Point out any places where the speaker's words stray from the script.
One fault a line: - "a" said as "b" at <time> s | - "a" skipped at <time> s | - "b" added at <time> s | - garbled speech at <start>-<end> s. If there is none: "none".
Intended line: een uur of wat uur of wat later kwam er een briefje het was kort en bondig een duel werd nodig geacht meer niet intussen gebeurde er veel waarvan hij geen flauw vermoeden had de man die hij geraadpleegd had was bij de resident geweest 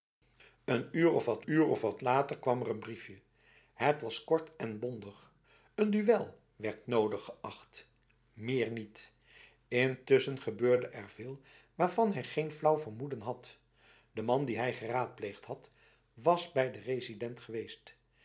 none